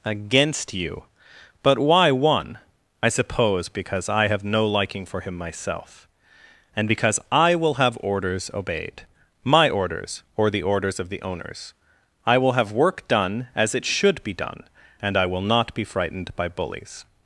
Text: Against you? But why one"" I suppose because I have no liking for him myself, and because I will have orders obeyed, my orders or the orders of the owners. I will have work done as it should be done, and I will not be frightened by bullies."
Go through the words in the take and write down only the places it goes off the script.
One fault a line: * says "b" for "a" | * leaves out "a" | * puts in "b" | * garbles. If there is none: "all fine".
all fine